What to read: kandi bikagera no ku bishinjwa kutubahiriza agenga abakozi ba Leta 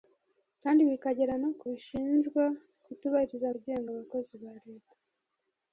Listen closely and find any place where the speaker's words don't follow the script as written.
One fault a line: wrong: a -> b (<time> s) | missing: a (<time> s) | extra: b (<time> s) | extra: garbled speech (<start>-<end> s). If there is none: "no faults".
no faults